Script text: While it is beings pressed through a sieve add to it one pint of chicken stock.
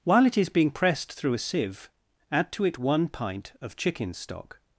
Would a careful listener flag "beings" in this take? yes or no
yes